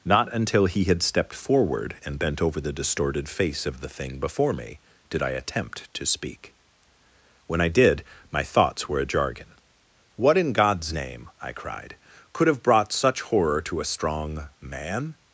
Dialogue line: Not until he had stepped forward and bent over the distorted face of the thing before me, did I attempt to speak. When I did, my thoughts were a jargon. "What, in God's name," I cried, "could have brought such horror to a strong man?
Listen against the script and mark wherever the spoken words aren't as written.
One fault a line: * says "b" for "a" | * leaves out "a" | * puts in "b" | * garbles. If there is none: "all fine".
all fine